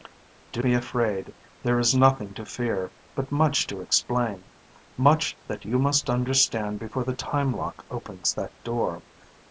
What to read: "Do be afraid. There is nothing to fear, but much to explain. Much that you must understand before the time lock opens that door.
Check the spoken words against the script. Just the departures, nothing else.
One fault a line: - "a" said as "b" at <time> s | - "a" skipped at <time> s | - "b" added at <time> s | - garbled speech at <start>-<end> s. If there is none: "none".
none